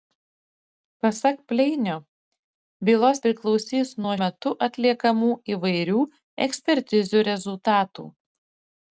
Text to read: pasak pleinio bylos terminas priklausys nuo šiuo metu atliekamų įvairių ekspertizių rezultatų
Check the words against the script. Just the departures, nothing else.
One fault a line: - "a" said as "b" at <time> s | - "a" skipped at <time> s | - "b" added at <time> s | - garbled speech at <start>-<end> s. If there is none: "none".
- "terminas" skipped at 3.2 s
- "šiuo" skipped at 4.2 s